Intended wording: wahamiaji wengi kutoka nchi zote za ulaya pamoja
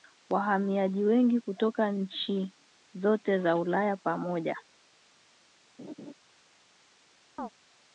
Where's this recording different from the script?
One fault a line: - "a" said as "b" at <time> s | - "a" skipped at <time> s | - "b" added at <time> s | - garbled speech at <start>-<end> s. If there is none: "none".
none